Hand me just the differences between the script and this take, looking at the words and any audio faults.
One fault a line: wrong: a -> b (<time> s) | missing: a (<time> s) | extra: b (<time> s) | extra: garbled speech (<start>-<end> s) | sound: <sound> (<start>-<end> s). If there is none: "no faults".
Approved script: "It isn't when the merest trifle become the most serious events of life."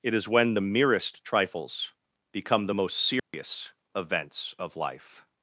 wrong: isn't -> is (0.1 s)
wrong: trifle -> trifles (1.2 s)
sound: dropout (3.2-3.3 s)